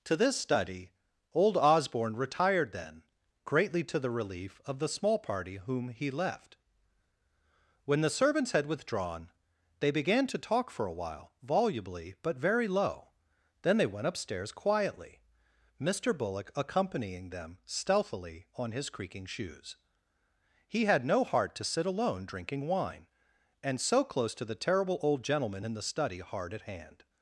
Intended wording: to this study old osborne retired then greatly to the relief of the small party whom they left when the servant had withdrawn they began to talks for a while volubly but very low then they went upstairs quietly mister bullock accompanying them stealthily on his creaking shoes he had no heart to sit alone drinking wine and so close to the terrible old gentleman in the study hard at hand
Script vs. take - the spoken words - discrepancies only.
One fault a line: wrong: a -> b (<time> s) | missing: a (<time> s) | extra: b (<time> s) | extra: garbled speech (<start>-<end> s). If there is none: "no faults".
wrong: they -> he (5.9 s)
wrong: servant -> servants (8.1 s)
wrong: talks -> talk (10.4 s)